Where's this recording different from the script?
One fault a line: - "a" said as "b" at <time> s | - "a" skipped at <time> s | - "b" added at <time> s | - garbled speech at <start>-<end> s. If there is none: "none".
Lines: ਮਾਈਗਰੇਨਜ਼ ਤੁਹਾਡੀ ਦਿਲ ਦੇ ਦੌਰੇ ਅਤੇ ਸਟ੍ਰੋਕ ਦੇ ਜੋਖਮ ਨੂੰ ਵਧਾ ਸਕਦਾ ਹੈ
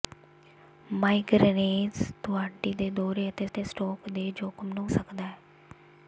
- "ਦਿਲ" skipped at 2.7 s
- "ਅਤੇ" added at 3.5 s
- "ਵਧਾ" skipped at 4.9 s